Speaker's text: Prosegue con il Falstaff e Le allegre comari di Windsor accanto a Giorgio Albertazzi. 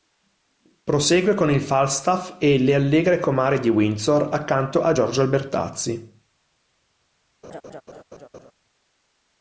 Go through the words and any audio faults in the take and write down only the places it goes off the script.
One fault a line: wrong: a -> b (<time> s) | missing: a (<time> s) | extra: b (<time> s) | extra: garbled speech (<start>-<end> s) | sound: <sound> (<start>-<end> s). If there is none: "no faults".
sound: laugh (7.4-8.5 s)